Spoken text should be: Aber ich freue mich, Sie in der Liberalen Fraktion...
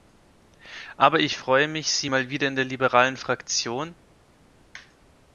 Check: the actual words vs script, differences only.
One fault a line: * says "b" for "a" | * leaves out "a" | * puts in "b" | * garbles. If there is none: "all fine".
* puts in "mal wieder"